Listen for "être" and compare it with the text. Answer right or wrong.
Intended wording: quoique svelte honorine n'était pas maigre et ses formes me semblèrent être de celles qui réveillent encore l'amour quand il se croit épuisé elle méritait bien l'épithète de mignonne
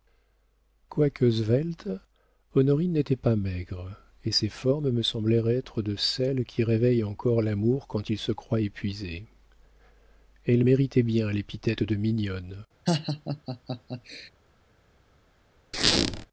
right